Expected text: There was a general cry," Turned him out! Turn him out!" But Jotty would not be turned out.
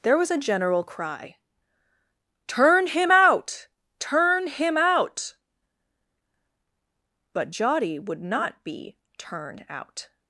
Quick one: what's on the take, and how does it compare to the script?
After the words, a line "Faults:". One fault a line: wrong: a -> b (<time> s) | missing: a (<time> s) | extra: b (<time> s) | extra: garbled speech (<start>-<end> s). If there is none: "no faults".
There was a general cry," Turn him out! Turn him out!" But Jotty would not be turned out.
Faults:
wrong: Turned -> Turn (2.5 s)